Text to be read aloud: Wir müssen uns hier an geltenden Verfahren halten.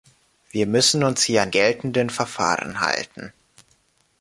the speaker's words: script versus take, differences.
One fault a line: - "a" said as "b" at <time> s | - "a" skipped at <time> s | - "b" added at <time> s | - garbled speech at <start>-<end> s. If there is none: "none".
none